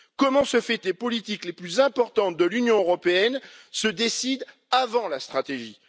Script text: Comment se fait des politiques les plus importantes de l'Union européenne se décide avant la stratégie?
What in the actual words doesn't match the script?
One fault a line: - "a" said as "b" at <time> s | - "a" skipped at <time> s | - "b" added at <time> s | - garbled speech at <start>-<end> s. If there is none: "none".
none